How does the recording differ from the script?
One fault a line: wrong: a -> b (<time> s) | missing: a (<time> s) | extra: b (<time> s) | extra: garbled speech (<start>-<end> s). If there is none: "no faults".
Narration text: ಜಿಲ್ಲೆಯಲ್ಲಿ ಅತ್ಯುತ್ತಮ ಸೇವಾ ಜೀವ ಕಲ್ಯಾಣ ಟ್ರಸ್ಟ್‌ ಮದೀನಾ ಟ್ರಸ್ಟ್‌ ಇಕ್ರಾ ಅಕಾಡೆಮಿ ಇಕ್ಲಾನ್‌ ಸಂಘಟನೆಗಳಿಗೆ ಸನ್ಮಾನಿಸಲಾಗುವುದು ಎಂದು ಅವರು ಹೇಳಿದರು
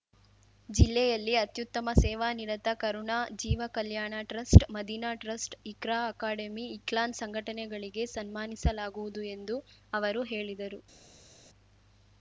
extra: ನಿರತ ಕರುಣಾ (2.3 s)